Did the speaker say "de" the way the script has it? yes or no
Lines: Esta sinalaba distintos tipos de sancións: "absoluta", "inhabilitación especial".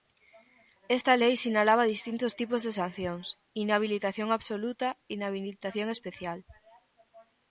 yes